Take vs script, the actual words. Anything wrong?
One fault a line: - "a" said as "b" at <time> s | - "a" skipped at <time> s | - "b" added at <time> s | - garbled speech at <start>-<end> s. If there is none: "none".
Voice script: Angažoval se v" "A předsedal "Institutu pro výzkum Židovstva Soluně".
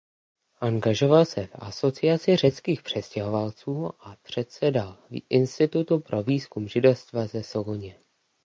- "Asociaci řeckých přistěhovalců" added at 1.6 s
- "ze" added at 7.3 s